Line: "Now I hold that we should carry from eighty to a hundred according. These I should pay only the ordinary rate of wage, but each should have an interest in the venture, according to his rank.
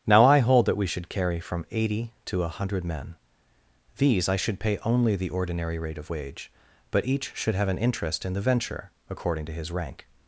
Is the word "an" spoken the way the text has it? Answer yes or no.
yes